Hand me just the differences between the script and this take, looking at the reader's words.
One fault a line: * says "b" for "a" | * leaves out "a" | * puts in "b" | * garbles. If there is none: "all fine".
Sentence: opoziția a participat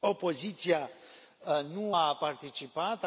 * puts in "nu"